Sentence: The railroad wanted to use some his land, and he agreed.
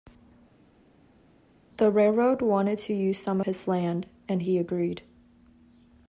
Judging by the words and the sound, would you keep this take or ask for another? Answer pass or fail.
pass